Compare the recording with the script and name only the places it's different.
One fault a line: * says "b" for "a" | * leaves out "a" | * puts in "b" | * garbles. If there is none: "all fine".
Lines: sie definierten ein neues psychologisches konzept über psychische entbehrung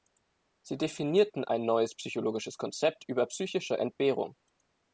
all fine